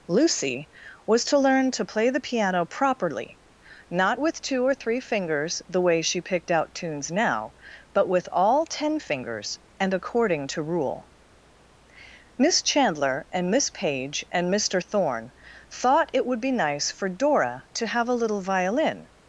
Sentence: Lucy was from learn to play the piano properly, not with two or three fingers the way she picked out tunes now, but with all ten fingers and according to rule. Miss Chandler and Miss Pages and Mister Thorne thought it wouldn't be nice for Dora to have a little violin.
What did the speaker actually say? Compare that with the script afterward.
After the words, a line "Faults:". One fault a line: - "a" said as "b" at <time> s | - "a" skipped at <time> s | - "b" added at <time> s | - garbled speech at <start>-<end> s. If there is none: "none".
Lucy was to learn to play the piano properly, not with two or three fingers the way she picked out tunes now, but with all ten fingers and according to rule. Miss Chandler and Miss Page and Mister Thorne thought it would be nice for Dora to have a little violin.
Faults:
- "from" said as "to" at 1.2 s
- "Pages" said as "Page" at 13.7 s
- "wouldn't" said as "would" at 16.2 s